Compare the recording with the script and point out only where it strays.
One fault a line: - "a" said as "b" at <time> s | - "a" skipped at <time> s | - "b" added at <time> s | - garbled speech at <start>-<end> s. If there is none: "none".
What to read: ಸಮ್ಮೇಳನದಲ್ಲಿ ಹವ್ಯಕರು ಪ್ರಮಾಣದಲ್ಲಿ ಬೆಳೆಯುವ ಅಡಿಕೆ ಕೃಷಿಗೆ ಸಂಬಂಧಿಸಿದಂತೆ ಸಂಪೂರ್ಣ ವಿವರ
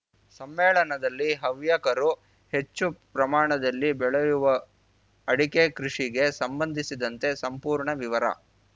- "ಹೆಚ್ಚು" added at 2.5 s